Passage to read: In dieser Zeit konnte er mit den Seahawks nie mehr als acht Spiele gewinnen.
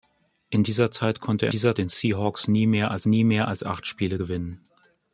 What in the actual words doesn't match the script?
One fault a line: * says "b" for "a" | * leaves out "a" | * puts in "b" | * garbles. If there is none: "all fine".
* says "dieser" for "mit"
* puts in "nie mehr als"